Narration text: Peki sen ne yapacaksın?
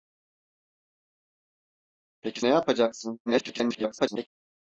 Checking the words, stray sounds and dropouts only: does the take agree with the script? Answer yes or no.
no